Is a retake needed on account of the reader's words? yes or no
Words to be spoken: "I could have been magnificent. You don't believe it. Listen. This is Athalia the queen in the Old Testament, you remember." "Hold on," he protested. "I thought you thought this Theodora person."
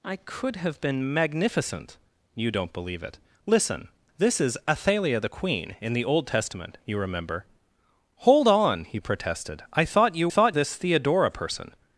no